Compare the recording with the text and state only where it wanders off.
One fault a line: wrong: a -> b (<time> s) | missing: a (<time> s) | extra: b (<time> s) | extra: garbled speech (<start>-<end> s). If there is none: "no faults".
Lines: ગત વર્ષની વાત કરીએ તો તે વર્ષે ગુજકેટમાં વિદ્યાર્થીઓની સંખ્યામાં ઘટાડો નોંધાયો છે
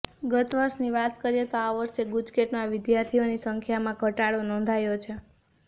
wrong: તે -> આ (1.6 s)